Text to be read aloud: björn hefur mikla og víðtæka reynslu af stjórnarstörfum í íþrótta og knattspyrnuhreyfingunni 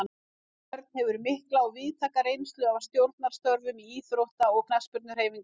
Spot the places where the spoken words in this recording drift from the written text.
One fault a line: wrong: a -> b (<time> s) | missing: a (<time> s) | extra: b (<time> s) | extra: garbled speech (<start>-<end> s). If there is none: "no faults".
no faults